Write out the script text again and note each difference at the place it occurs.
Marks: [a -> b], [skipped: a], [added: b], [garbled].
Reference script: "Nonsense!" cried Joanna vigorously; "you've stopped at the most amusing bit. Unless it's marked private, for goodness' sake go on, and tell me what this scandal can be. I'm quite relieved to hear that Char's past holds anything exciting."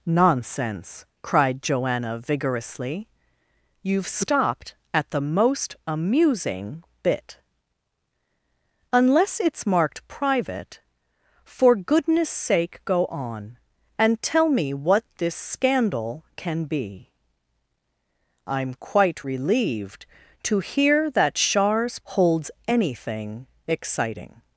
"Nonsense!" cried Joanna vigorously; "you've stopped at the most amusing bit. Unless it's marked private, for goodness' sake go on, and tell me what this scandal can be. I'm quite relieved to hear that Char's [skipped: past] holds anything exciting."